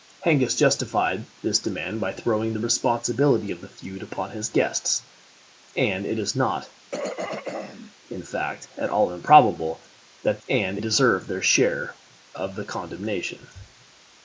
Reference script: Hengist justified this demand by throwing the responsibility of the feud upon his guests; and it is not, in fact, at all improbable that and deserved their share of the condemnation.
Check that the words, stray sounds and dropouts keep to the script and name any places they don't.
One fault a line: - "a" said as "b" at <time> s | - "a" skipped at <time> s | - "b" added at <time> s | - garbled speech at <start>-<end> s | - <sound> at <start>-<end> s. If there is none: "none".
- throat clearing at 6.9-7.9 s